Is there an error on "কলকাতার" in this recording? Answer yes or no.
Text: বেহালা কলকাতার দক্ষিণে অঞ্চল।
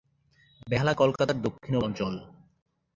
no